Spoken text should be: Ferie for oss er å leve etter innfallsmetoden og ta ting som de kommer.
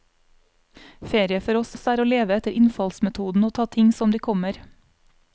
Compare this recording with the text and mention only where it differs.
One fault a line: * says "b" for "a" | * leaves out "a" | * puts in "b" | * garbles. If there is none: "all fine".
* puts in "oss"